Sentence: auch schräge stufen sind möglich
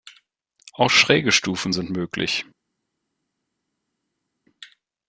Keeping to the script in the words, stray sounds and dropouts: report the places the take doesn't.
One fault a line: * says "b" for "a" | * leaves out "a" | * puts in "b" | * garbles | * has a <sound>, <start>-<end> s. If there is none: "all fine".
all fine